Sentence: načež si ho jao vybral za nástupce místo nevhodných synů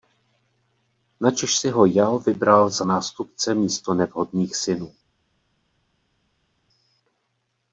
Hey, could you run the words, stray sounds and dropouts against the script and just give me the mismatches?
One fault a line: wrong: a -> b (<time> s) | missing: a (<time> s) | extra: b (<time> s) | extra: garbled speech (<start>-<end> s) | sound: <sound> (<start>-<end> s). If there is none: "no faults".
no faults